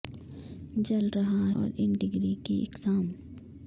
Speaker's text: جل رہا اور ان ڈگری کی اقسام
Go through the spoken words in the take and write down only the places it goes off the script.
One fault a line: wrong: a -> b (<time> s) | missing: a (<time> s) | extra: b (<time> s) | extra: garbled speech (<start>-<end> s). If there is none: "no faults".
no faults